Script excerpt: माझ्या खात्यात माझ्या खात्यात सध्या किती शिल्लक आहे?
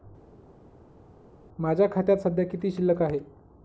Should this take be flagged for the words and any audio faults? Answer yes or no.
yes